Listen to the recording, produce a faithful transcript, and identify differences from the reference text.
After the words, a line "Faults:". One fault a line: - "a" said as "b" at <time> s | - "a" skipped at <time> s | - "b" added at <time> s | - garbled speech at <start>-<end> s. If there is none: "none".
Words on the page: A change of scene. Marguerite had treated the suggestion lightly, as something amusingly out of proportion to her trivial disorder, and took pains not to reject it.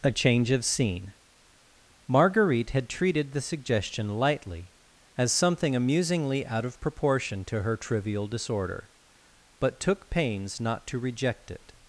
A change of scene. Marguerite had treated the suggestion lightly, as something amusingly out of proportion to her trivial disorder, but took pains not to reject it.
Faults:
- "and" said as "but" at 9.6 s